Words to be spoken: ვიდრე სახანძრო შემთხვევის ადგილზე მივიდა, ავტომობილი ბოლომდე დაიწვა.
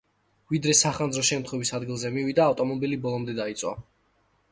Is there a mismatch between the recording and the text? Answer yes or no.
no